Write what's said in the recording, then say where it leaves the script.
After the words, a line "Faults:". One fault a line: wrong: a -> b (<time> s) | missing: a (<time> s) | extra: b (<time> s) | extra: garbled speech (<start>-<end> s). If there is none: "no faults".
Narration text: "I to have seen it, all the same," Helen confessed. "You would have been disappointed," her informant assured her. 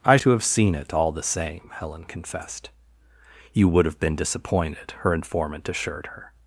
"I to have seen it, all the same," Helen confessed. "You would have been disappointed," her informant assured her.
Faults:
no faults